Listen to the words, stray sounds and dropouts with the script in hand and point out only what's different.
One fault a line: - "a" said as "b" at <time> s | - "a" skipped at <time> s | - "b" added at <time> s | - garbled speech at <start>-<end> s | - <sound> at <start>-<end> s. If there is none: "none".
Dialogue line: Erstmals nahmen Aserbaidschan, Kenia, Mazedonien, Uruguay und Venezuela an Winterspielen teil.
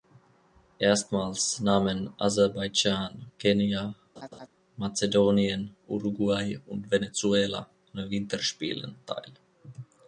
- laugh at 4.2-4.5 s